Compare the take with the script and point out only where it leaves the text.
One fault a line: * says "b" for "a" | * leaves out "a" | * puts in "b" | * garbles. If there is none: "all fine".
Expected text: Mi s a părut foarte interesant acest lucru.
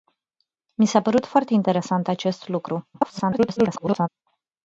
* garbles